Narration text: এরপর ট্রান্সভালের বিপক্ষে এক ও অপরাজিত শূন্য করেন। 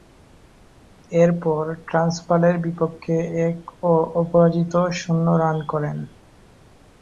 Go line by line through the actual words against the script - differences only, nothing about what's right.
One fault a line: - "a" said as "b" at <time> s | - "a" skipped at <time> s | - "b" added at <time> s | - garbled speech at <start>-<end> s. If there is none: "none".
- "রান" added at 5.4 s